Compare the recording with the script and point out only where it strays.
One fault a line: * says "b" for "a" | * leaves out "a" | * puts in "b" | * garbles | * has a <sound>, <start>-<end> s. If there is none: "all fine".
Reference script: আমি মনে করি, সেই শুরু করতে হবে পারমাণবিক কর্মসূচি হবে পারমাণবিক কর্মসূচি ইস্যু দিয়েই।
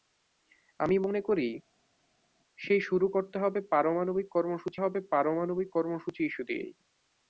all fine